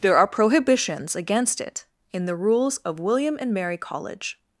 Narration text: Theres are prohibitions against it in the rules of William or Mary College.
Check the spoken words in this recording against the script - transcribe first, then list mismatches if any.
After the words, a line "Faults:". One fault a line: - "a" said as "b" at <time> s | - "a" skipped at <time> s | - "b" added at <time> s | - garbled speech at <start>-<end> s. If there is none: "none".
There are prohibitions against it in the rules of William and Mary College.
Faults:
- "Theres" said as "There" at 0.0 s
- "or" said as "and" at 3.4 s